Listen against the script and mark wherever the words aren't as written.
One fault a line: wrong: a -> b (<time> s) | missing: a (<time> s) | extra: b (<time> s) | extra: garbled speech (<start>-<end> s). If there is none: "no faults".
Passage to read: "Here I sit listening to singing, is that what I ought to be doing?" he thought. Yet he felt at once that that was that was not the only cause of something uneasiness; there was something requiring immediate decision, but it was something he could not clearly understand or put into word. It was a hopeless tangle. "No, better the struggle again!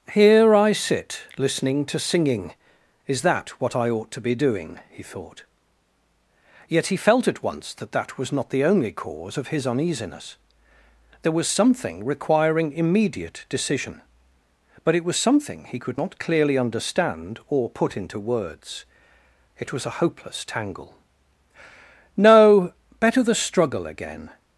missing: that was (8.3 s)
wrong: something -> his (9.5 s)
wrong: word -> words (18.2 s)